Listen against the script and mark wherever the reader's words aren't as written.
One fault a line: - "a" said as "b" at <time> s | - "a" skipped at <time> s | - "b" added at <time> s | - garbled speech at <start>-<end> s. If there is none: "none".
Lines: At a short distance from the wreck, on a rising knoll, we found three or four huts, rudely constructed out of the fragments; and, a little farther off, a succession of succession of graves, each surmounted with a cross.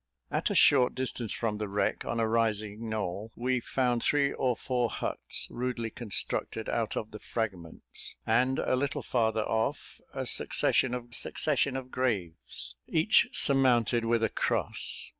none